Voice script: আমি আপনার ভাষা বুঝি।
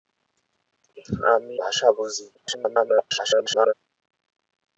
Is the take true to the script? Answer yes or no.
no